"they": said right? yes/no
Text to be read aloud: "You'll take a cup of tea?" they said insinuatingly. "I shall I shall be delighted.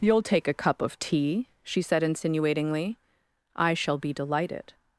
no